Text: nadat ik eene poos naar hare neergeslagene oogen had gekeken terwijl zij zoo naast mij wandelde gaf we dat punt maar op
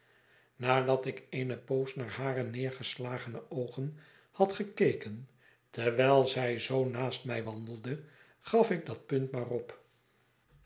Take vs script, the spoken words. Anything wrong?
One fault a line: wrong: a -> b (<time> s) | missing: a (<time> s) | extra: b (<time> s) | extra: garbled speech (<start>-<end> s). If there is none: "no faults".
wrong: we -> ik (8.7 s)